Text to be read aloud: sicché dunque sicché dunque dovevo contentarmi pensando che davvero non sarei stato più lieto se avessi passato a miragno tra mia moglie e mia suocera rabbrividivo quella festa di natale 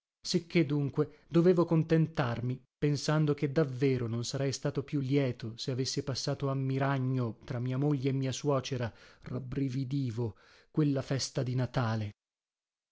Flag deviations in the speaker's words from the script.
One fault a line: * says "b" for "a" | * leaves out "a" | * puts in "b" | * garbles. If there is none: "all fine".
* leaves out "sicché dunque"